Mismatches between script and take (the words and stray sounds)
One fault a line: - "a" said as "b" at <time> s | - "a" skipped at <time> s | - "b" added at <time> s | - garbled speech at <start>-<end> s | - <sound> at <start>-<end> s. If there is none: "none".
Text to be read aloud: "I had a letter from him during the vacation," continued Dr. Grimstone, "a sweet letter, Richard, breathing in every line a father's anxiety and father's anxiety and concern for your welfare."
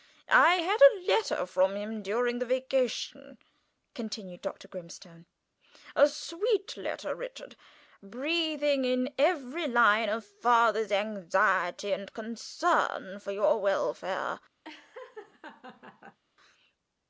- "father's anxiety and" skipped at 12.1 s
- laugh at 14.6-16.2 s